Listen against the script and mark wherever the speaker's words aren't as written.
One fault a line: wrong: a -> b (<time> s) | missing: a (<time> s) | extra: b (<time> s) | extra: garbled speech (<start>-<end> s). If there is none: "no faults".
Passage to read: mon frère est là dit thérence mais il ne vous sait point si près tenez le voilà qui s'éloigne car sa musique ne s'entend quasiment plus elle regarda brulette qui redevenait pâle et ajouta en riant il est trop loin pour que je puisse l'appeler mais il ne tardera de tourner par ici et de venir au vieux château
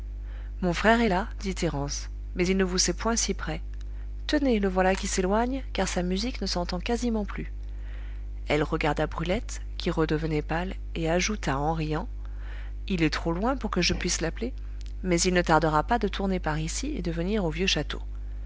extra: pas (15.8 s)